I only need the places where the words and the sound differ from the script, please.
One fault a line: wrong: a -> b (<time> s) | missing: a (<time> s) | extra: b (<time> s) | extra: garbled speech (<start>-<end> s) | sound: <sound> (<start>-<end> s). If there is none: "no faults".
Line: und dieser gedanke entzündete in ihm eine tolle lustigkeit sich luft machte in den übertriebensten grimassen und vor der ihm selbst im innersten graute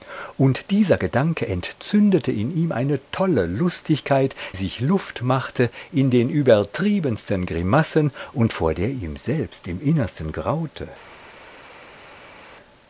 no faults